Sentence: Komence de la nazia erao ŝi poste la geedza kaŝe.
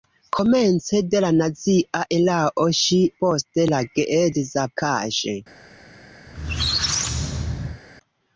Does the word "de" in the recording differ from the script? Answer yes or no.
no